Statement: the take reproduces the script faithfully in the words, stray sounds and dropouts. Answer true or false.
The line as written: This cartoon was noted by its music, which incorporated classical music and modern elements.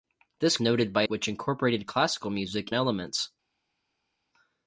false